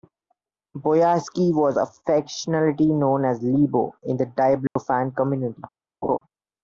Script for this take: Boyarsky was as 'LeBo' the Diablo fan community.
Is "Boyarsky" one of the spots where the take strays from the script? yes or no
no